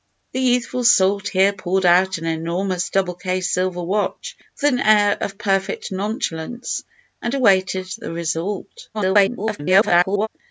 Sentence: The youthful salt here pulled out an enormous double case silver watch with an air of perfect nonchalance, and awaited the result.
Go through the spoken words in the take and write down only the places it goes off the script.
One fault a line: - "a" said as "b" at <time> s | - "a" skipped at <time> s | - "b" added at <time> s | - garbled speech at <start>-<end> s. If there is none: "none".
- garbled speech at 8.9-10.3 s